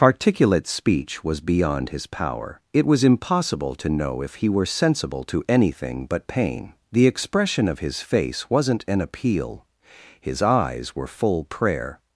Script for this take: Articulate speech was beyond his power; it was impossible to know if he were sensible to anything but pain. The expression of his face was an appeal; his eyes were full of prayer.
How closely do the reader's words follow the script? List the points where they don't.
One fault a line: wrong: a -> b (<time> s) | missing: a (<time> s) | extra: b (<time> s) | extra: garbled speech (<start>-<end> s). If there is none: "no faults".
wrong: was -> wasn't (8.5 s)
missing: of (11.4 s)